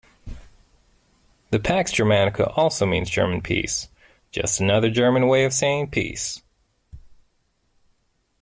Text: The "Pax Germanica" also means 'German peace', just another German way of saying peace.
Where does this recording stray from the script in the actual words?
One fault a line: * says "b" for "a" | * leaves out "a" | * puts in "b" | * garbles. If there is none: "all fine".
all fine